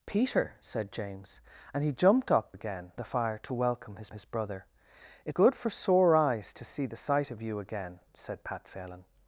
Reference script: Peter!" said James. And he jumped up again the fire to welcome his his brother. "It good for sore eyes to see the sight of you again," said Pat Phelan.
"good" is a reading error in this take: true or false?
false